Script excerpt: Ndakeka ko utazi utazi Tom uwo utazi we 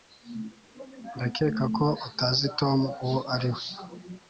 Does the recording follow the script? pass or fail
fail